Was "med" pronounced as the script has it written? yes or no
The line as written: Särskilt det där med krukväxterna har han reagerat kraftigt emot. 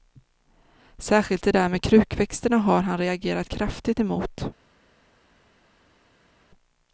yes